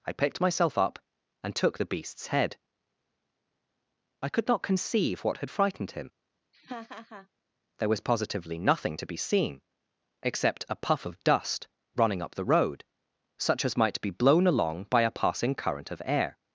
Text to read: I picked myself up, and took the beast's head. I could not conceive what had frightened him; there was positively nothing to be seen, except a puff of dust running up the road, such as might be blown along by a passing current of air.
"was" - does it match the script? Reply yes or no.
yes